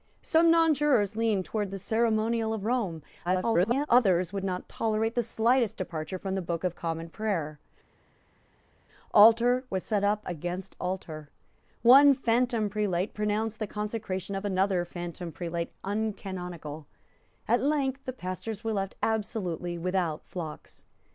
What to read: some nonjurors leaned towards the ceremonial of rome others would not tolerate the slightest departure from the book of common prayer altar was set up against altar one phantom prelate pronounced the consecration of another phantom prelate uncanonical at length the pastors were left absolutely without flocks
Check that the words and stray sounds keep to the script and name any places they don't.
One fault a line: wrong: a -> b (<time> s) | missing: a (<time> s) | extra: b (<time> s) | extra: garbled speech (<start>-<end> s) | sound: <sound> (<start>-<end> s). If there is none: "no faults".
extra: garbled speech (3.2-3.9 s)